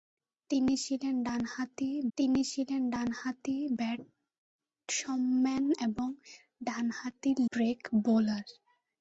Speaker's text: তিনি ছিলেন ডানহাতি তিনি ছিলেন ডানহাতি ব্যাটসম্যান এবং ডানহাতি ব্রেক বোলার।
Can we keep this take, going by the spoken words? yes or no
yes